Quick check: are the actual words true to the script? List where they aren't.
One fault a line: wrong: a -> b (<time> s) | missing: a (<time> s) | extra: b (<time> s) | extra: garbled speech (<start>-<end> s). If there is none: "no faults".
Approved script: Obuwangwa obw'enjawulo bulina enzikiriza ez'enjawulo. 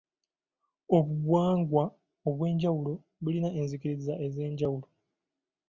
no faults